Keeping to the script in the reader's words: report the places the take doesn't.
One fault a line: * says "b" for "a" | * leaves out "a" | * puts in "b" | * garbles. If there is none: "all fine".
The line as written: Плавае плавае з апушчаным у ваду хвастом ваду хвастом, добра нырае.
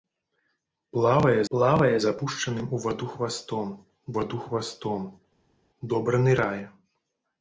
all fine